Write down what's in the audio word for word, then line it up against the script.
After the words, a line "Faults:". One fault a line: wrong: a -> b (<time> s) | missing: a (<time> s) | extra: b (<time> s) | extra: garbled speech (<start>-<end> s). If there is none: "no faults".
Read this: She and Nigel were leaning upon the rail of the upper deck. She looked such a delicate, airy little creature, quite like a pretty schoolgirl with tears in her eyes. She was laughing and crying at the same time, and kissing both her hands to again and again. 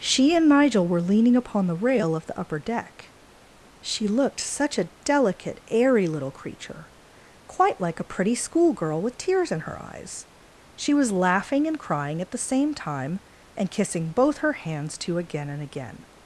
She and Nigel were leaning upon the rail of the upper deck. She looked such a delicate, airy little creature, quite like a pretty schoolgirl with tears in her eyes. She was laughing and crying at the same time, and kissing both her hands to again and again.
Faults:
no faults